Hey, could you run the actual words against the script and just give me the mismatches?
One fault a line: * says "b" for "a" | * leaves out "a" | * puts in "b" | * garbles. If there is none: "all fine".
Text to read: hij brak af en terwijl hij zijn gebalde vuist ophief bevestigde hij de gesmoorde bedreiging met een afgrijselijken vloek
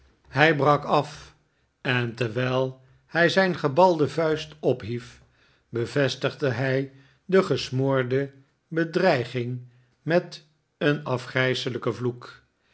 all fine